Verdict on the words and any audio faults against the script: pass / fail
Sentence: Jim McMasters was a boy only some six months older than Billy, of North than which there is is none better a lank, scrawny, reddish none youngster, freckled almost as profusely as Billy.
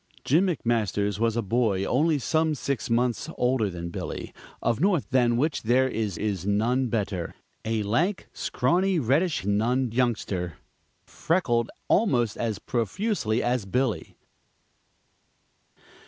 pass